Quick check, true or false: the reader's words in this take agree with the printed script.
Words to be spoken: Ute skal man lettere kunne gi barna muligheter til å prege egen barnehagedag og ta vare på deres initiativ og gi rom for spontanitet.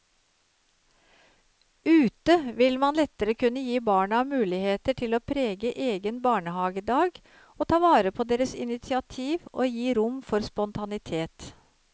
false